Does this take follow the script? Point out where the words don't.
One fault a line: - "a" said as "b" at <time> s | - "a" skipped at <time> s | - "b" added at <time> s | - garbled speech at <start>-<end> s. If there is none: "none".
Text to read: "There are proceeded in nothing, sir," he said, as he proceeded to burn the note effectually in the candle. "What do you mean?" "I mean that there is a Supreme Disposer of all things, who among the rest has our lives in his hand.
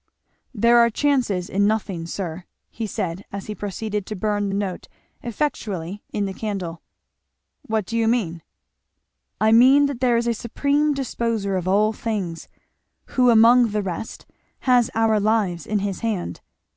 - "proceeded" said as "chances" at 0.9 s